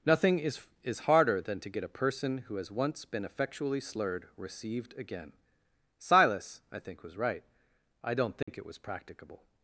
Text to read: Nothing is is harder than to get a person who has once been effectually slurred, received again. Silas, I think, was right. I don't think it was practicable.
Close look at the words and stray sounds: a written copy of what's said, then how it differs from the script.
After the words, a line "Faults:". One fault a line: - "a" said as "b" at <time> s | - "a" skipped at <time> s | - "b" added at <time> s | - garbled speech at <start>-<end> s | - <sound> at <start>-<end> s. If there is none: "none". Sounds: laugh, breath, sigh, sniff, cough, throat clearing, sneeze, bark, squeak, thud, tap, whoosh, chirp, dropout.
Nothing is is harder than to get a person who has once been effectually slurred, received again. Silas, I think, was right. I don't think it was practicable.
Faults:
- dropout at 8.4-8.5 s